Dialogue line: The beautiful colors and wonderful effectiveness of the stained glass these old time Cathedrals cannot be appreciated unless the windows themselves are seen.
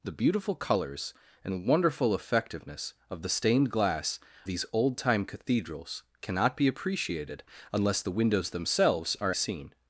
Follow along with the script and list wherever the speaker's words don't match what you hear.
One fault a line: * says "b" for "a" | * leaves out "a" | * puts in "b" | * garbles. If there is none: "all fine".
all fine